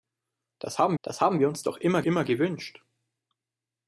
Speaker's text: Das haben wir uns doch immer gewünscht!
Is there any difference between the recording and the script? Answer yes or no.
yes